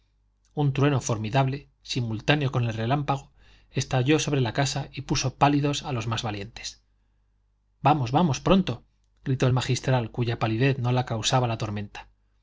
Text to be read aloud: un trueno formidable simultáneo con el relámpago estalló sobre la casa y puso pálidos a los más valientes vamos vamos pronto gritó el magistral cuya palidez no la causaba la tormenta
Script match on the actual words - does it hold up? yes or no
yes